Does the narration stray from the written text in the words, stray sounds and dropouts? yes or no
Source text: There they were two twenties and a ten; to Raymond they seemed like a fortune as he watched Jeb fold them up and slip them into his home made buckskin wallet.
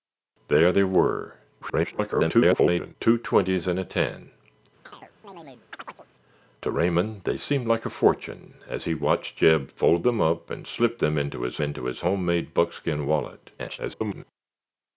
yes